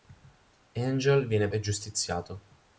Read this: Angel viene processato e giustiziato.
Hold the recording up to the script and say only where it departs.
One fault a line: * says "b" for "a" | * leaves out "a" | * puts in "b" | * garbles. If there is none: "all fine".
* leaves out "processato"